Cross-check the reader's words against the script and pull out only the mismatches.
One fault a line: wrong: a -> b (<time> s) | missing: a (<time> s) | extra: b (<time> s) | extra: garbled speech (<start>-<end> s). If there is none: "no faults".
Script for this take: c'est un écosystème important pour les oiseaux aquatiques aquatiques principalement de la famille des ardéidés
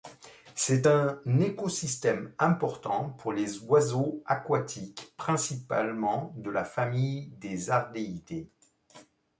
missing: aquatiques (5.1 s)